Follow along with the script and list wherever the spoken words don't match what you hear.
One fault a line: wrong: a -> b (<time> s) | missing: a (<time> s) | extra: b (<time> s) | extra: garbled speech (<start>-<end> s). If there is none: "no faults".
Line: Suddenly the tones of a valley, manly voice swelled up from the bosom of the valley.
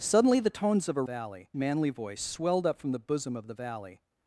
no faults